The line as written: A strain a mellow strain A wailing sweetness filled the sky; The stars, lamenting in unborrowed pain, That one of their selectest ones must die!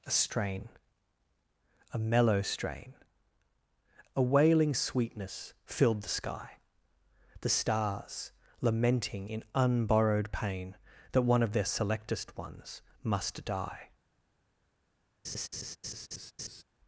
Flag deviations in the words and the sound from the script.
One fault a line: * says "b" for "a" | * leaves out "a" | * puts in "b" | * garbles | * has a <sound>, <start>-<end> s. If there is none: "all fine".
* has a laugh, 15.2-16.6 s